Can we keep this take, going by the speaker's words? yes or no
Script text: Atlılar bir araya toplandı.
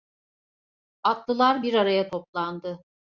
yes